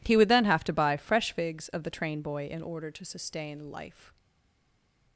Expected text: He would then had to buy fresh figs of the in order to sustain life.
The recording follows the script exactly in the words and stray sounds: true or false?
false